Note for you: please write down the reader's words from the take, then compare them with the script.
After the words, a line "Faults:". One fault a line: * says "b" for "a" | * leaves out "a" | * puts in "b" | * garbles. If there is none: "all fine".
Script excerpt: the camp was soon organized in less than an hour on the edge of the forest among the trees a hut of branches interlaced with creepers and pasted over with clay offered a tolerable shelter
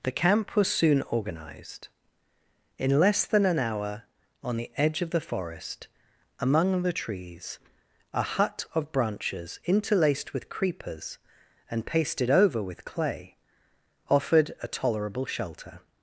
the camp was soon organized in less than an hour on the edge of the forest among the trees a hut of branches interlaced with creepers and pasted over with clay offered a tolerable shelter
Faults:
all fine